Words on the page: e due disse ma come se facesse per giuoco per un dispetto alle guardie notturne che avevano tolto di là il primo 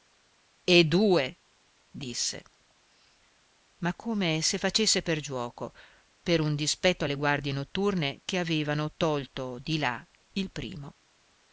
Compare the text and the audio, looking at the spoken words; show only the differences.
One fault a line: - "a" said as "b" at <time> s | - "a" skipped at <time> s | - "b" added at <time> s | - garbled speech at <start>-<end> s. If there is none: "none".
none